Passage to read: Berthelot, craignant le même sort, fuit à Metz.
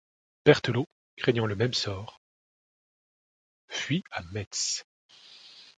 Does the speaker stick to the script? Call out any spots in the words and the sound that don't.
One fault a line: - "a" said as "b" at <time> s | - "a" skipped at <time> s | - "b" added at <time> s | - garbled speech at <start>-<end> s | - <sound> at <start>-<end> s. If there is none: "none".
none